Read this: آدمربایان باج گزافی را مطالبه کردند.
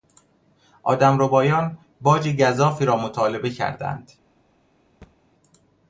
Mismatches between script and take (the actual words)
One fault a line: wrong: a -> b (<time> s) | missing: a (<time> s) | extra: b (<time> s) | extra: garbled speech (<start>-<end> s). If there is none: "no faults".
no faults